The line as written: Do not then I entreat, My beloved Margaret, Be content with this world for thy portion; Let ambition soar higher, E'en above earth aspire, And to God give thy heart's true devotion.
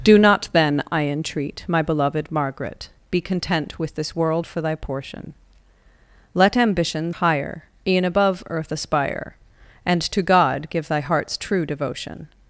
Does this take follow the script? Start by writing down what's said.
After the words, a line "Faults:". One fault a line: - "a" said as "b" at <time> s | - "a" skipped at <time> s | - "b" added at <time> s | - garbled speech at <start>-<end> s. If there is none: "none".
Do not then I entreat, My beloved Margaret, Be content with this world for thy portion; Let ambition higher, E'en above earth aspire, And to God give thy heart's true devotion.
Faults:
- "soar" skipped at 7.1 s